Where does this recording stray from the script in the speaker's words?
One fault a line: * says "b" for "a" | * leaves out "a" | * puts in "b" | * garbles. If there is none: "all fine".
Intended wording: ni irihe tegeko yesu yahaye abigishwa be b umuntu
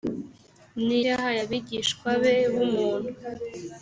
* leaves out "irihe tegeko yesu"